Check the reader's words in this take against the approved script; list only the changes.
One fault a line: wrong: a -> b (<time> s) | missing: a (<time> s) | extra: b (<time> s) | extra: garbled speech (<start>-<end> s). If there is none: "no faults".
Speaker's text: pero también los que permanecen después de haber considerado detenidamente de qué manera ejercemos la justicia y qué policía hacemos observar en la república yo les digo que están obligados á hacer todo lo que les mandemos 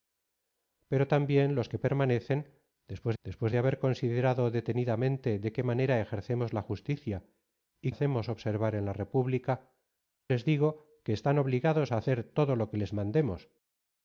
extra: después (3.2 s)
missing: qué policía (7.9 s)
missing: yo (9.7 s)